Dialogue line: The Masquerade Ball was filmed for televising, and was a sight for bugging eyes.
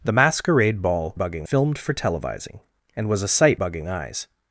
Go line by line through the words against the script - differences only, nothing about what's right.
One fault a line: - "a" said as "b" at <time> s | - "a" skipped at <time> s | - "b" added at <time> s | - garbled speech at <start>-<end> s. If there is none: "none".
- "was" said as "bugging" at 1.1 s
- "for" skipped at 3.6 s